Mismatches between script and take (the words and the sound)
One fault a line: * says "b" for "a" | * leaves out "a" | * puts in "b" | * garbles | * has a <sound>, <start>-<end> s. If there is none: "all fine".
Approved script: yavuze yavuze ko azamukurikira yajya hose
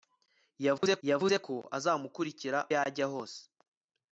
* has a dropout, 0.8-0.8 s